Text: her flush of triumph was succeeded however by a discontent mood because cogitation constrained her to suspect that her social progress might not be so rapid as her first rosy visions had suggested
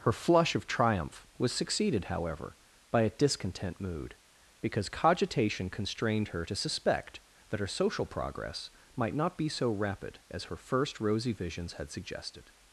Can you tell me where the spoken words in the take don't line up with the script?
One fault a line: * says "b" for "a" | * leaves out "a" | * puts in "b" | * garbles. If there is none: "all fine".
all fine